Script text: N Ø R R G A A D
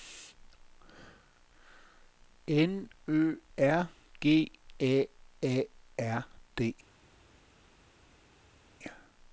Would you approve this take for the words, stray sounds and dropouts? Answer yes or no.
no